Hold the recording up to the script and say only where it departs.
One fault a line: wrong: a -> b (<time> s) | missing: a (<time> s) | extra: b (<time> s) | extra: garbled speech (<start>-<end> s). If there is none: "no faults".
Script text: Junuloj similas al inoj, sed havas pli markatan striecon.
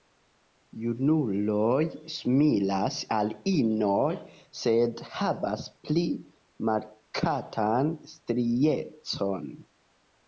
no faults